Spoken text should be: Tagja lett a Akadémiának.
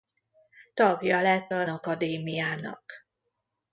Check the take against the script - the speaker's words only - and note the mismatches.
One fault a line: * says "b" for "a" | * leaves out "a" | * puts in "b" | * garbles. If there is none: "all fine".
all fine